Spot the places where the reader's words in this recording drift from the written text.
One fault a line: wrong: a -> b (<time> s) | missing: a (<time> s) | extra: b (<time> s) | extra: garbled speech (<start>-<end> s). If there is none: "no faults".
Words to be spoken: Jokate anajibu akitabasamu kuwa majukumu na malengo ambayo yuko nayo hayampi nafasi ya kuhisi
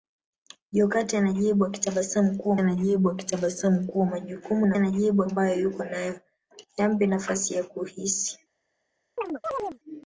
extra: anajibu akitabasamu kuwa (2.6 s)
wrong: malengo -> anajibu (4.8 s)